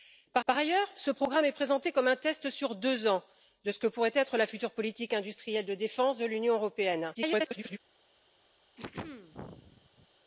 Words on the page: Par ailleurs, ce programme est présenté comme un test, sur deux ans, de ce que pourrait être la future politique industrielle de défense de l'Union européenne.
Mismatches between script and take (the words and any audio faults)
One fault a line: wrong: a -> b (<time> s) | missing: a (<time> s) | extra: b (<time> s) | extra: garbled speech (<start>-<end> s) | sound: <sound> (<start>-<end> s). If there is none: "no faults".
extra: par (0.5 s)
extra: garbled speech (7.1-7.8 s)
sound: throat clearing (8.8-10.1 s)